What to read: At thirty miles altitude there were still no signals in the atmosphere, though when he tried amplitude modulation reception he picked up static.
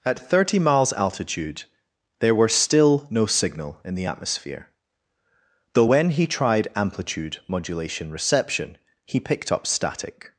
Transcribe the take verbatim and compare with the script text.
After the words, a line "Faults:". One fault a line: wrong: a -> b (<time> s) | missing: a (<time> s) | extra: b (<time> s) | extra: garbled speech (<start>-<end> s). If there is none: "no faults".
At thirty miles altitude there were still no signal in the atmosphere, though when he tried amplitude modulation reception he picked up static.
Faults:
wrong: signals -> signal (3.2 s)